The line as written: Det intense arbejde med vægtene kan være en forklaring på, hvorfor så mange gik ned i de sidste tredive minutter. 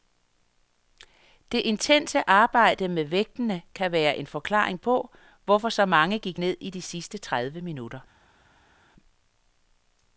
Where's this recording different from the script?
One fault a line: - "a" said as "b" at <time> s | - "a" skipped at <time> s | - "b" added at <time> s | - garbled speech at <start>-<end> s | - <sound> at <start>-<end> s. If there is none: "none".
none